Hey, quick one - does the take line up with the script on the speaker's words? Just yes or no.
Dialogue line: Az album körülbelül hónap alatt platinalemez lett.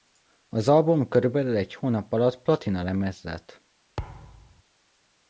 no